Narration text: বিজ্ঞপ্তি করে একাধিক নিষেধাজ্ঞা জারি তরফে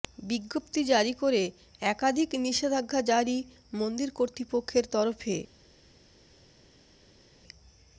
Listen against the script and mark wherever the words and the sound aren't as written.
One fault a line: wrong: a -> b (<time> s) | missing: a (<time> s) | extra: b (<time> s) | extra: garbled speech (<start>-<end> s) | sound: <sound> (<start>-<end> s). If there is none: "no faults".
extra: জারি (0.8 s)
extra: মন্দির কর্তৃপক্ষের (3.7 s)